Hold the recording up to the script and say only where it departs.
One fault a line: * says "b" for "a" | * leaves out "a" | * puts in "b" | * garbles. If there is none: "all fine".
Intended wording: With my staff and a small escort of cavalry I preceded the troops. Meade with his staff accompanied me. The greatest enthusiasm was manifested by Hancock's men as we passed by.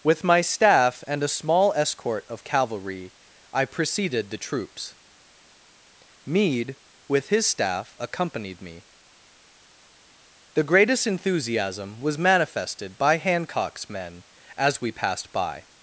all fine